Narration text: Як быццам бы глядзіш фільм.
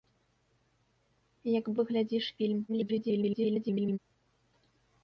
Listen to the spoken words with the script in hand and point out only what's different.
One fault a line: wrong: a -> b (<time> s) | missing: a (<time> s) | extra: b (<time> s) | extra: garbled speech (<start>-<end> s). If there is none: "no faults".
missing: быццам (1.6 s)
extra: garbled speech (2.7-4.0 s)